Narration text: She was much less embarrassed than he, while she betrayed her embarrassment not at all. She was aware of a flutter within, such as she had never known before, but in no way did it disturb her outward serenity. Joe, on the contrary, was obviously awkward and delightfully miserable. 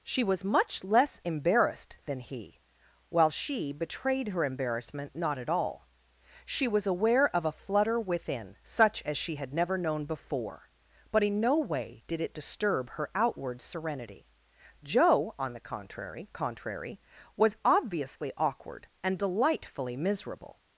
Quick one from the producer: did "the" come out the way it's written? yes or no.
yes